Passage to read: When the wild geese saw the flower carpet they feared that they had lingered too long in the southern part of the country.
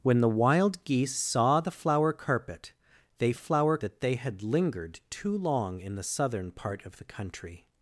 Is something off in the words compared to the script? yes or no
yes